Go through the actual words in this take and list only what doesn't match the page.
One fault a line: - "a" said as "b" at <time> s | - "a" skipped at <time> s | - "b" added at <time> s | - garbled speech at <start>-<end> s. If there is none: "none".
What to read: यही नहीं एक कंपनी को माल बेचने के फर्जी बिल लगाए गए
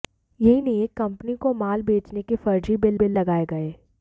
- "बिल" added at 2.9 s